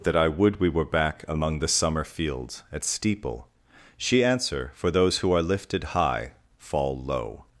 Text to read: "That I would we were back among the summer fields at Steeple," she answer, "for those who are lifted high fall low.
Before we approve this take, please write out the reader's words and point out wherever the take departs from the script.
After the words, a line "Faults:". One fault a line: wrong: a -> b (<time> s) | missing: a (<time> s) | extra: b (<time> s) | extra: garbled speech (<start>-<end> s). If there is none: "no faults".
"That I would we were back among the summer fields at Steeple," she answer, "for those who are lifted high fall low.
Faults:
no faults